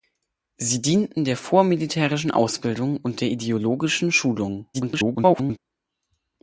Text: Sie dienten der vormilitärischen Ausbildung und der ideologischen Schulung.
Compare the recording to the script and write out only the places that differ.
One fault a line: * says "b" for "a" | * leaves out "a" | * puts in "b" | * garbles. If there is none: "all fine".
* garbles